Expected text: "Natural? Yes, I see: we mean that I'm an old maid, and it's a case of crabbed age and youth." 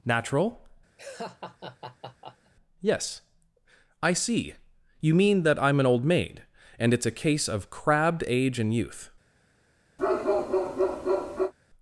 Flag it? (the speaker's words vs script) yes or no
yes